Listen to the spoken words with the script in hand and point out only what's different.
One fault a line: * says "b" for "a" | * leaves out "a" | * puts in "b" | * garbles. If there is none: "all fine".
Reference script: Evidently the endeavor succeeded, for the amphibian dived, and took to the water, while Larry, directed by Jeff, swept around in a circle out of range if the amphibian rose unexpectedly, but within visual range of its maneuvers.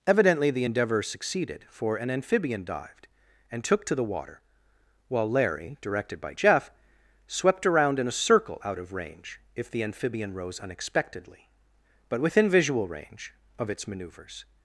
* says "an" for "the"